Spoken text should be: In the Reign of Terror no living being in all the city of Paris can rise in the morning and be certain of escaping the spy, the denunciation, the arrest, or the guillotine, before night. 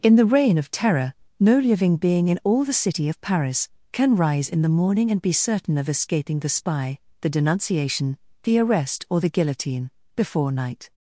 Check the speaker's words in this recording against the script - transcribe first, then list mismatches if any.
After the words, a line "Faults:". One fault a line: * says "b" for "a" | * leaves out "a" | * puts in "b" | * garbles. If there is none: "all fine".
In the Reign of Terror no living being in all the city of Paris can rise in the morning and be certain of escaping the spy, the denunciation, the arrest, or the guillotine, before night.
Faults:
all fine